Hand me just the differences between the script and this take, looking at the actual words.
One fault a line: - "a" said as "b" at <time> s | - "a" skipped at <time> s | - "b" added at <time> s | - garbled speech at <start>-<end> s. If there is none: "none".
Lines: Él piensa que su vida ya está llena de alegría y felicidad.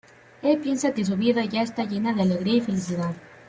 none